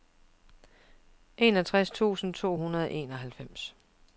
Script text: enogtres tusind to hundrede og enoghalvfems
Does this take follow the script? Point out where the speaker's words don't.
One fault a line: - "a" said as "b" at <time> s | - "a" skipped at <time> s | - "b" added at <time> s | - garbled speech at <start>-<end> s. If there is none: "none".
none